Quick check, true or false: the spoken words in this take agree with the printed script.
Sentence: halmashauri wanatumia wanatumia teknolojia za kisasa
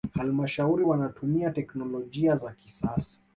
false